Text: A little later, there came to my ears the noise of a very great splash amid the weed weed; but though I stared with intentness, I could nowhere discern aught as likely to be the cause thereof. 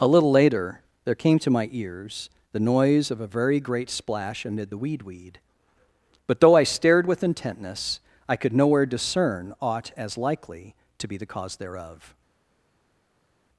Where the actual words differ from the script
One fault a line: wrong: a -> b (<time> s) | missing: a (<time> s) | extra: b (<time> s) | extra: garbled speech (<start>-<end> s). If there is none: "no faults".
no faults